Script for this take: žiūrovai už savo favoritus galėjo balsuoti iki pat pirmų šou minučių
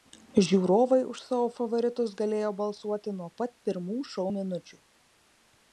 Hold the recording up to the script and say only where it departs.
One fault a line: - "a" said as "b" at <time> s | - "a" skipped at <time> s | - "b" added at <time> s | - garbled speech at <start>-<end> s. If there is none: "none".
- "iki" said as "nuo" at 3.2 s